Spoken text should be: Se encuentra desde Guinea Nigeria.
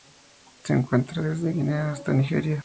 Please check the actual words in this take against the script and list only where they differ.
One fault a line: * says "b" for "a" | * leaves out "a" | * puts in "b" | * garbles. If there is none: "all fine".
* puts in "hasta"